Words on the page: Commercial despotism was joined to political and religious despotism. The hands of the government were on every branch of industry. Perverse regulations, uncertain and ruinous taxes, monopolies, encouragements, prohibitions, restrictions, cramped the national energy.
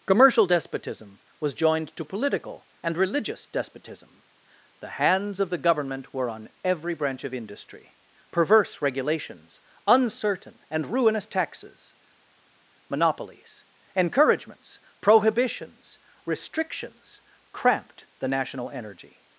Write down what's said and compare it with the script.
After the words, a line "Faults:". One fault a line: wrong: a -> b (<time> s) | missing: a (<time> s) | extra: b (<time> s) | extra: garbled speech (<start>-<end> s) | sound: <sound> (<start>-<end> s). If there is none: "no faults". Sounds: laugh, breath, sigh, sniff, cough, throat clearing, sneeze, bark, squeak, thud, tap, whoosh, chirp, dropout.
Commercial despotism was joined to political and religious despotism. The hands of the government were on every branch of industry. Perverse regulations, uncertain and ruinous taxes, monopolies, encouragements, prohibitions, restrictions, cramped the national energy.
Faults:
no faults